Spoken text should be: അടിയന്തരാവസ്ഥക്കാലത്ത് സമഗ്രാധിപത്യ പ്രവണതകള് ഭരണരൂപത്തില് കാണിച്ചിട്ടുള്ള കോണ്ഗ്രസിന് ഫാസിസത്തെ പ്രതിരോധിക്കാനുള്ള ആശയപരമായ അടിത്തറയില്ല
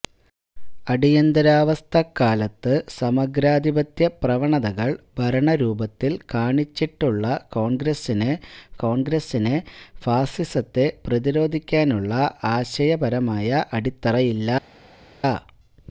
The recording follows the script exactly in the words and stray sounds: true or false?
false